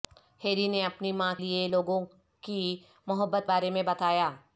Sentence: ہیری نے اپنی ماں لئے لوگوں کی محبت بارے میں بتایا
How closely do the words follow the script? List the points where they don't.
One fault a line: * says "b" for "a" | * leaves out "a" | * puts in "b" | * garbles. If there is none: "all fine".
all fine